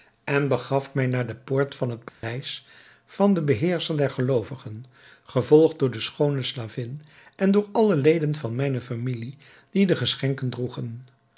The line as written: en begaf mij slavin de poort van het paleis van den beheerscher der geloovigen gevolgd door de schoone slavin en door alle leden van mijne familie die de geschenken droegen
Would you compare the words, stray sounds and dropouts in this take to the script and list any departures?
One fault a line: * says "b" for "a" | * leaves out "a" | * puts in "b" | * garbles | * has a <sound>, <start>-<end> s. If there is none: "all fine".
* says "naar" for "slavin"
* has a dropout, 2.1-2.2 s